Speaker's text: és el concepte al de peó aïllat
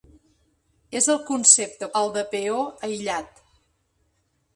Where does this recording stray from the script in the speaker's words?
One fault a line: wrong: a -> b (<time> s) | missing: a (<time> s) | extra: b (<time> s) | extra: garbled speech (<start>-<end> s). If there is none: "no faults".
no faults